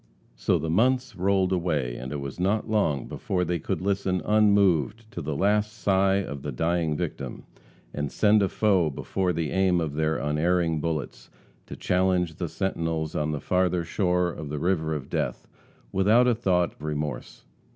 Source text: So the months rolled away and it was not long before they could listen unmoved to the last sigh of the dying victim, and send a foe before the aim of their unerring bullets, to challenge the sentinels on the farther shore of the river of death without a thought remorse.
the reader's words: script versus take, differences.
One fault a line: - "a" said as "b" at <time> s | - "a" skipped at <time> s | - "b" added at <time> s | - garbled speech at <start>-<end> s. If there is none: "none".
none